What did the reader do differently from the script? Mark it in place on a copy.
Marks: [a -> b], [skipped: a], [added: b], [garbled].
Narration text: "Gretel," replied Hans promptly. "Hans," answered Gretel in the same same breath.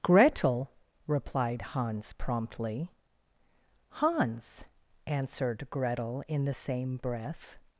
"Gretel," replied Hans promptly. "Hans," answered Gretel in the same [skipped: same] breath.